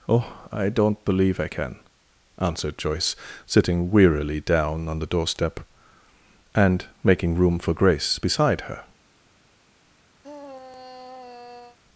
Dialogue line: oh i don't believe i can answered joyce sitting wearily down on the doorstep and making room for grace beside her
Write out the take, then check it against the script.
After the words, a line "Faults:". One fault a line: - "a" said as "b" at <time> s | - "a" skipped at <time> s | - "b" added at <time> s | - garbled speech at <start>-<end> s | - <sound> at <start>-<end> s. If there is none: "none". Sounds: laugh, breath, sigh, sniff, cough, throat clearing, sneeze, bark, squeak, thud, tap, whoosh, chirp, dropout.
oh i don't believe i can answered joyce sitting wearily down on the doorstep and making room for grace beside her
Faults:
- sigh at 10.2-11.8 s